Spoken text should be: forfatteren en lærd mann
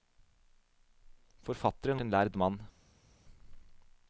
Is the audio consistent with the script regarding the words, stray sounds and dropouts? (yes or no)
yes